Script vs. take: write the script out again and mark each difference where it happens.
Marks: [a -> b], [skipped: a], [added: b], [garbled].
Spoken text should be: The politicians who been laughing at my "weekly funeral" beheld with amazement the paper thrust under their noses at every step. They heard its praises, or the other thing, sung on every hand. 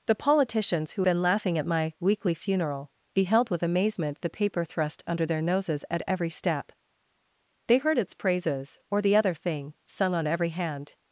The politicians who been laughing at my "weekly funeral" beheld with amazement the paper thrust under their noses at every step. They heard its praises, or the other thing, sung on every hand.